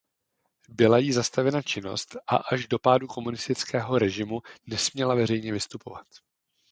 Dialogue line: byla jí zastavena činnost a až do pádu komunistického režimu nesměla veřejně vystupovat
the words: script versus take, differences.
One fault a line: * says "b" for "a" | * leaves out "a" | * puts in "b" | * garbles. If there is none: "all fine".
all fine